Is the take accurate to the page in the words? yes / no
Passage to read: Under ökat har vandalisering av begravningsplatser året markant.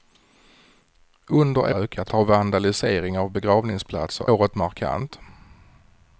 yes